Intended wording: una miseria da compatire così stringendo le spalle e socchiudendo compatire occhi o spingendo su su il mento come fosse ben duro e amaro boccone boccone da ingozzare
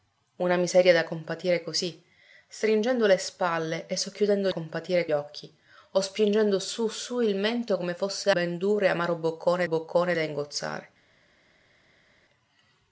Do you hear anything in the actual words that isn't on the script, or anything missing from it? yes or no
no